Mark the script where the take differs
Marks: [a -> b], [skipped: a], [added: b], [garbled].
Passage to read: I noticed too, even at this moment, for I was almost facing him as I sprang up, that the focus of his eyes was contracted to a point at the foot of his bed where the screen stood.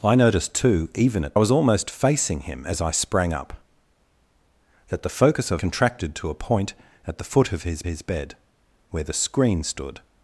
I noticed too, even at [skipped: this moment, for] I was almost facing him as I sprang up, that the focus of [skipped: his eyes was] contracted to a point at the foot of his [added: his] bed where the screen stood.